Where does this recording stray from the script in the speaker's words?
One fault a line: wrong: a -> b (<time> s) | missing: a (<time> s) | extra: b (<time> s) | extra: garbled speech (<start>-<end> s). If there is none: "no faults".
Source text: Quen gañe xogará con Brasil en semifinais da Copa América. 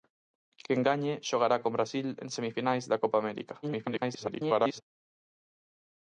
extra: garbled speech (3.6-4.8 s)